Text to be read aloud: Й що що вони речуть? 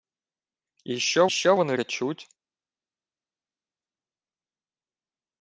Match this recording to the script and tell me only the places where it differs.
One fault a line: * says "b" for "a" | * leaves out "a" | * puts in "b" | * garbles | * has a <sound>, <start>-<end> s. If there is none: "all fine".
all fine